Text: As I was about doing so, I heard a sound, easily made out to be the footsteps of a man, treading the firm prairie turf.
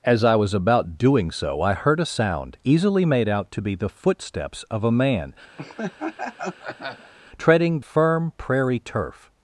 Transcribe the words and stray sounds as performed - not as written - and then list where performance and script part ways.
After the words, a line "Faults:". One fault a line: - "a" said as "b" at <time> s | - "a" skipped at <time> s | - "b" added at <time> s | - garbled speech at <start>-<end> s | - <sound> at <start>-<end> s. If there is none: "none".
As I was about doing so, I heard a sound, easily made out to be the footsteps of a man, treading firm prairie turf.
Faults:
- laugh at 5.6-7.1 s
- "the" skipped at 7.8 s